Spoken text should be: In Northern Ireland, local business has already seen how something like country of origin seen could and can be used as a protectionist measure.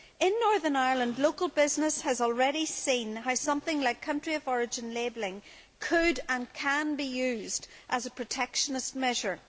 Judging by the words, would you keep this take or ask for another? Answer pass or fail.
fail